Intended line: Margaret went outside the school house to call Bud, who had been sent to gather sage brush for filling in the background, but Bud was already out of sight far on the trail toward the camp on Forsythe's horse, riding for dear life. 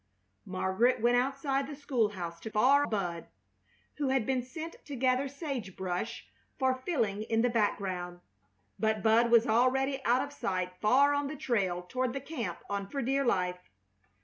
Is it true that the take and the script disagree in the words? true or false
true